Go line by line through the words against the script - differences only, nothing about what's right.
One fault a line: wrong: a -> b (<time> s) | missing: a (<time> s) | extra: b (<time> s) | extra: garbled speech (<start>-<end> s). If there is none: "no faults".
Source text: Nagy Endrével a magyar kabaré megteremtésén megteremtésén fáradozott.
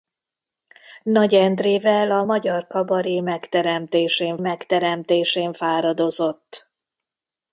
no faults